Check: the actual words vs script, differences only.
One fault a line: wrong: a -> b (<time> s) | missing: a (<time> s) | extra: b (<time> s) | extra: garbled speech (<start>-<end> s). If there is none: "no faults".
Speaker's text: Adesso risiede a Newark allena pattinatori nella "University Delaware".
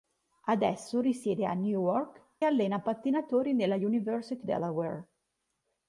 no faults